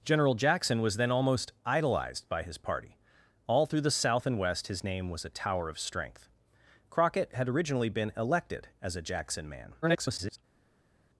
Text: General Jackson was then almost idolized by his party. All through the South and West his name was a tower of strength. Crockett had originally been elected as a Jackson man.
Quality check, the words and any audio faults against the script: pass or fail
fail